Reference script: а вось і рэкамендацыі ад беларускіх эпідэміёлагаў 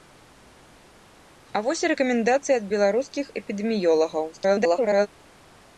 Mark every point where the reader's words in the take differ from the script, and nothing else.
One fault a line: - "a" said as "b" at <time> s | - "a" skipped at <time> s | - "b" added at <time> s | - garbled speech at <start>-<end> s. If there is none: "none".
- garbled speech at 4.3-5.1 s